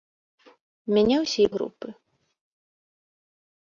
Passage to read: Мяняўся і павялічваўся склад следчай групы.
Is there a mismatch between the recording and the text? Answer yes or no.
yes